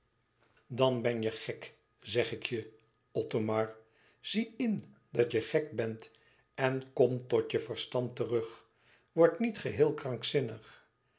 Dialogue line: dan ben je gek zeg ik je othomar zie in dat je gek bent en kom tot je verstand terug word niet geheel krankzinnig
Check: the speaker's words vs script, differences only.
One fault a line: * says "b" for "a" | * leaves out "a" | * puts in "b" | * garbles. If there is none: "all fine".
all fine